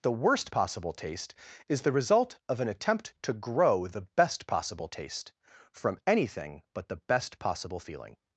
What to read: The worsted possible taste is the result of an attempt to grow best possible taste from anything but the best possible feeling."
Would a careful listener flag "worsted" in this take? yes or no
yes